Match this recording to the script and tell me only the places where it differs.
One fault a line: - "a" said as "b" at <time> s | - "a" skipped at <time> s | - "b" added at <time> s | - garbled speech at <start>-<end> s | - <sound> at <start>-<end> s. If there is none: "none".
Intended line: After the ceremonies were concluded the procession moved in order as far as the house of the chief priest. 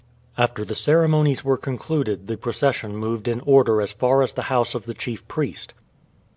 none